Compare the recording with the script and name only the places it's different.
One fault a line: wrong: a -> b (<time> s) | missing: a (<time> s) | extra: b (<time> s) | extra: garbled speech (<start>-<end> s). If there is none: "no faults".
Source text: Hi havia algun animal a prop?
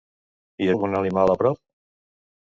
missing: havia (0.7 s)